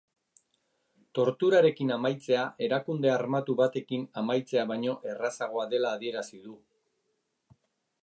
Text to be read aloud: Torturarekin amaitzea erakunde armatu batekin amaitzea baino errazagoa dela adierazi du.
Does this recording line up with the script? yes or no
yes